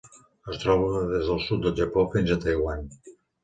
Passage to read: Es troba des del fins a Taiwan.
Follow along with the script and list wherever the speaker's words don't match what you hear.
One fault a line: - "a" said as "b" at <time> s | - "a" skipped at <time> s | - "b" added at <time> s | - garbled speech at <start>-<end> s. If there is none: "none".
- "sud del Japó" added at 1.5 s